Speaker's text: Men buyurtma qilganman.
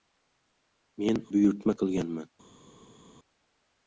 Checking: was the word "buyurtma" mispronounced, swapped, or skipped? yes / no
no